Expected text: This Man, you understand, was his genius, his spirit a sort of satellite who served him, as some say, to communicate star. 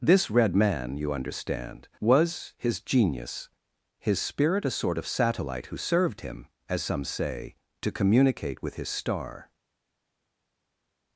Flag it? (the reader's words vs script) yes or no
yes